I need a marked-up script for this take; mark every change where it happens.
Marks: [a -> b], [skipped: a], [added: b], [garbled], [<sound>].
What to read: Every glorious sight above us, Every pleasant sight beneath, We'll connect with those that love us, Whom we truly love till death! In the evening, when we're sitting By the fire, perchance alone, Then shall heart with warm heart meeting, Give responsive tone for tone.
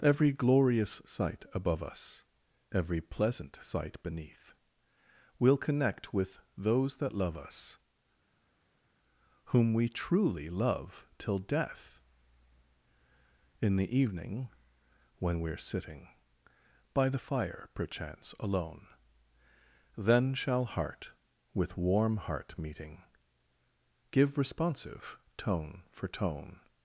Every glorious sight above us, Every pleasant sight beneath, We'll connect with those that love us, Whom we truly love till death! In the evening, when we're sitting By the fire, perchance alone, Then shall heart with warm heart meeting, Give responsive tone for tone.